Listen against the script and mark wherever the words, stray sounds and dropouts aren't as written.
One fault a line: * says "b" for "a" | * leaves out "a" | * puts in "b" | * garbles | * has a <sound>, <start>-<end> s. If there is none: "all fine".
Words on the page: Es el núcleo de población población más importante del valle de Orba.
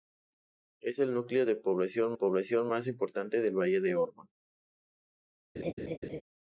* has a laugh, 5.6-6.2 s